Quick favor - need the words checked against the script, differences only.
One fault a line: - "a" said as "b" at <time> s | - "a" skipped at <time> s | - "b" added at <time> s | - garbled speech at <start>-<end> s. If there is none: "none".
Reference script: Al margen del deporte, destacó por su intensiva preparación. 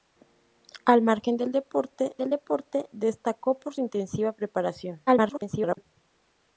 - "del deporte" added at 2.2 s
- "su" skipped at 3.7 s
- garbled speech at 5.1-5.9 s